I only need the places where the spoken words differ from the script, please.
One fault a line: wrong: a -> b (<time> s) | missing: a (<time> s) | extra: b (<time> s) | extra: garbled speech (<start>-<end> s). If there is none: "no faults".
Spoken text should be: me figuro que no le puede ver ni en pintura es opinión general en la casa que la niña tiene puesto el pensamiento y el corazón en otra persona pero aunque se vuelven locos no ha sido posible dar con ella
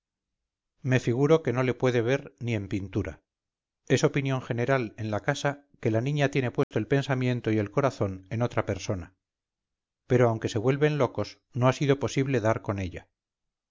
no faults